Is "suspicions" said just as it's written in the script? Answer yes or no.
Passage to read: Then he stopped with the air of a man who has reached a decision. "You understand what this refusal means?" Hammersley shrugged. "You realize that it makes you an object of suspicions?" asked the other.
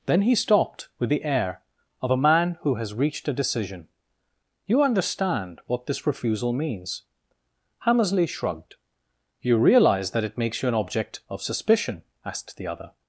no